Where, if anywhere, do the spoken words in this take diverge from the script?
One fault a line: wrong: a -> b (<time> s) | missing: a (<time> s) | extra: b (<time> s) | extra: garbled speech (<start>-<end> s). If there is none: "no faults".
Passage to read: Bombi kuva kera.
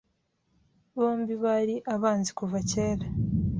extra: bari abanzi (1.4 s)